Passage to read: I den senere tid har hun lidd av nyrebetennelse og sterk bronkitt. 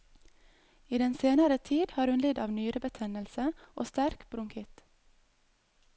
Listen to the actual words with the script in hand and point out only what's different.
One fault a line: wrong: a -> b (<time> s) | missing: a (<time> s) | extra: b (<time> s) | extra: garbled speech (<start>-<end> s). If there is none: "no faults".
no faults